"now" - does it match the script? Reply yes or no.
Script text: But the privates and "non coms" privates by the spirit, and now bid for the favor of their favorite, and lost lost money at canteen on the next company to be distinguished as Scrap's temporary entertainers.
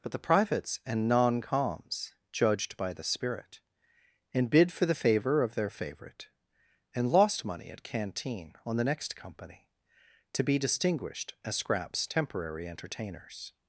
no